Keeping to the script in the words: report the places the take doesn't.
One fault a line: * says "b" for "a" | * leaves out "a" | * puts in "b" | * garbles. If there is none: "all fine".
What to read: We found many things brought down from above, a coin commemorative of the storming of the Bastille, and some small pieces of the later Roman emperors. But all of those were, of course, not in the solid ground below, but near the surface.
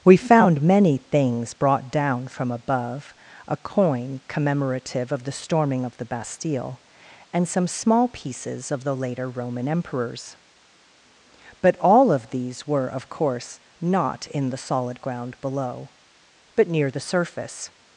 * says "these" for "those"